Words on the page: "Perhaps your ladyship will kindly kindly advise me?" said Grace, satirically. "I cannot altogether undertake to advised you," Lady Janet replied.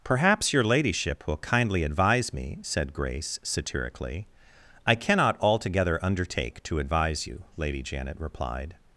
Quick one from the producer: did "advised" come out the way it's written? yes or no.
no